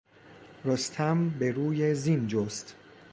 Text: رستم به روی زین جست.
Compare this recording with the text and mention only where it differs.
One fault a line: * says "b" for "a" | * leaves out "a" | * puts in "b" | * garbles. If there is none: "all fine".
all fine